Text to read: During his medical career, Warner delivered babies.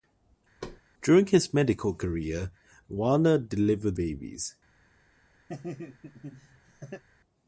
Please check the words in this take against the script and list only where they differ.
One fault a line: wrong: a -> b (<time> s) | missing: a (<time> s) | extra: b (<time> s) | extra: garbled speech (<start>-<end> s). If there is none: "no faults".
no faults